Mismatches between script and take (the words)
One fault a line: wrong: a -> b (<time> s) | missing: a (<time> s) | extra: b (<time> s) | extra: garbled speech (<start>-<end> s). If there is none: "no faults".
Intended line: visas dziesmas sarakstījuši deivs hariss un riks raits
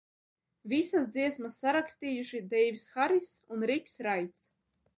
no faults